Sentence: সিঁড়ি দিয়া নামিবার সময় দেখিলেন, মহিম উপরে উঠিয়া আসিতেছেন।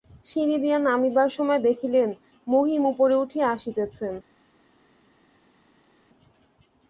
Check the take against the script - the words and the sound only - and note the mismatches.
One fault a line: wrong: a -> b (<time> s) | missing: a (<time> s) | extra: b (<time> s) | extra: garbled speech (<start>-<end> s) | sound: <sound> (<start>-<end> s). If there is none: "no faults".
no faults